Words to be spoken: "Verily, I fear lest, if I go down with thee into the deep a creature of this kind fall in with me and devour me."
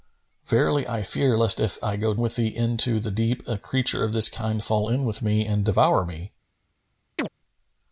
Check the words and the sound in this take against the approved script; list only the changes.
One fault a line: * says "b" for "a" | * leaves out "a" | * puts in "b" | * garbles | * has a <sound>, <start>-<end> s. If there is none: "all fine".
* leaves out "down"
* has a chirp, 7.2-7.3 s